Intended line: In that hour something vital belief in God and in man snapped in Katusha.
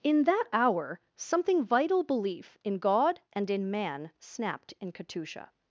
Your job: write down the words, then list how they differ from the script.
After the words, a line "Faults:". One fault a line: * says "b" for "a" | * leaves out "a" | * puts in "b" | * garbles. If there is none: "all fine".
In that hour something vital belief in God and in man snapped in Katusha.
Faults:
all fine